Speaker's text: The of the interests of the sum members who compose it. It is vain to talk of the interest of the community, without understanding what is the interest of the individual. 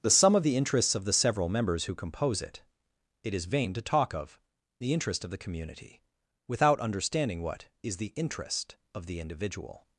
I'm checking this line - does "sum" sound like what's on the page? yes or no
no